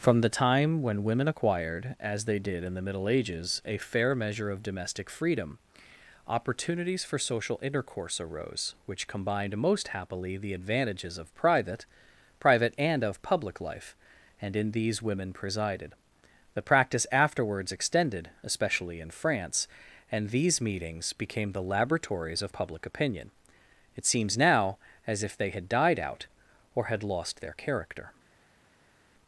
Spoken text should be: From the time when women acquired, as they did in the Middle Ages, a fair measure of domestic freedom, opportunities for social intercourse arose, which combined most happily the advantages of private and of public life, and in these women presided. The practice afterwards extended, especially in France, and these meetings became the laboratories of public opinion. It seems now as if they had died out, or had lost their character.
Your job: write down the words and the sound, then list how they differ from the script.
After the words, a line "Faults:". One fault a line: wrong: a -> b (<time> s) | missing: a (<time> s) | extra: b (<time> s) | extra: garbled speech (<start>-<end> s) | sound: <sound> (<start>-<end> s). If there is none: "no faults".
From the time when women acquired, as they did in the Middle Ages, a fair measure of domestic freedom, opportunities for social intercourse arose, which combined most happily the advantages of private private and of public life, and in these women presided. The practice afterwards extended, especially in France, and these meetings became the laboratories of public opinion. It seems now as if they had died out, or had lost their character.
Faults:
extra: private (12.4 s)